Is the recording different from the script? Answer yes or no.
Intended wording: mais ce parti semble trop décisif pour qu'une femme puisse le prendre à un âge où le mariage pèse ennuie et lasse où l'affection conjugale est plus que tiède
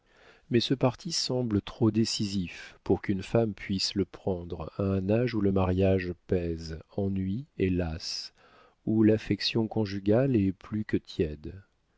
no